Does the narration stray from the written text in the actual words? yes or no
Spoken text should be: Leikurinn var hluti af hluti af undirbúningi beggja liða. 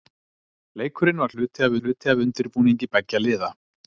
no